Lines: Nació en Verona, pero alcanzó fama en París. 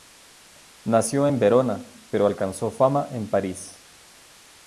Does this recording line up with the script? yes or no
yes